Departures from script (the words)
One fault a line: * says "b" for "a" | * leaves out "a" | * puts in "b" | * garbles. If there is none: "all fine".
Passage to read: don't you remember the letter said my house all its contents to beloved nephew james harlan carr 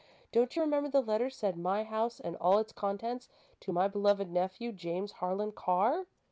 * puts in "and"
* puts in "my"